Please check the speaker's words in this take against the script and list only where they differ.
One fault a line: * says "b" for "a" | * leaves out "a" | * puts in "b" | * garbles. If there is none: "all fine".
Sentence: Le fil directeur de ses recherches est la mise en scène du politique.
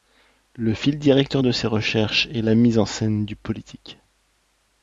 all fine